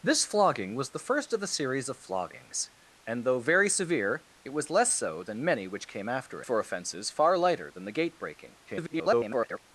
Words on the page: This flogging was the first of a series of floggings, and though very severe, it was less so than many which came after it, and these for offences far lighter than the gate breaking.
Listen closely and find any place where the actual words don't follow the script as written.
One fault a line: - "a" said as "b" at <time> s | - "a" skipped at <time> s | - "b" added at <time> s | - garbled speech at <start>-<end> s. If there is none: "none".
- "it and these" skipped at 6.4 s
- garbled speech at 8.7-9.6 s